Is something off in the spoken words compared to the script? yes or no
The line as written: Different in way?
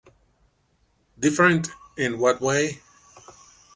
yes